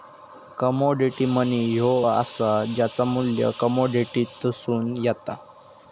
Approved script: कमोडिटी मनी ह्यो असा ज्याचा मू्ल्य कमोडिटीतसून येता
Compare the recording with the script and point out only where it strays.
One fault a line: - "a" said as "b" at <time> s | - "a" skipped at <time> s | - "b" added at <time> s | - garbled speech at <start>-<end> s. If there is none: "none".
none